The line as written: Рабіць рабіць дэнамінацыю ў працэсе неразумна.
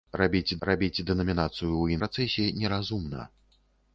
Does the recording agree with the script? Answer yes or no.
yes